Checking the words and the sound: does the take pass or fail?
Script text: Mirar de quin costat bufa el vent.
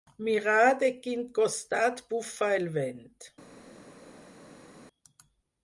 pass